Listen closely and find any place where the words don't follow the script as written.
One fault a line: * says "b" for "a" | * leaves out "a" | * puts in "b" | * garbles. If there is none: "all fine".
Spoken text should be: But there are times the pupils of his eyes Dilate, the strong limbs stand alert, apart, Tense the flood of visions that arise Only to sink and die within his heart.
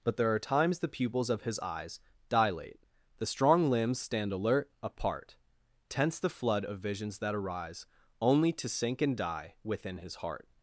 all fine